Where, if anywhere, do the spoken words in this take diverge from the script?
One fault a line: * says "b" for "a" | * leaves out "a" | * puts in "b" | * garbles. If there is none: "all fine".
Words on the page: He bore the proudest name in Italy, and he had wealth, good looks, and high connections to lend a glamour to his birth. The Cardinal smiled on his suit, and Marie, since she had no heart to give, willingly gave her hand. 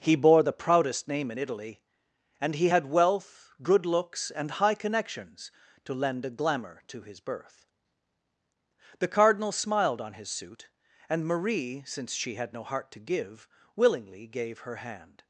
all fine